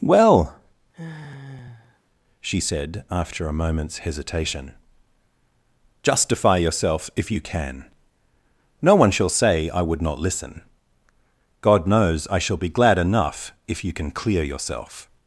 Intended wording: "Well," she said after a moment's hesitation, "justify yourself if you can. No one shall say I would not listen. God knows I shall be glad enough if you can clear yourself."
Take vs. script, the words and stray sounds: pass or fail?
fail